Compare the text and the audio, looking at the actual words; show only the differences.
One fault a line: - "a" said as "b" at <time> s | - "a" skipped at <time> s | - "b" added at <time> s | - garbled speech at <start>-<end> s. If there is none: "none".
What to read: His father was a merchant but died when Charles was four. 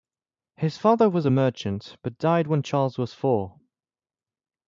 none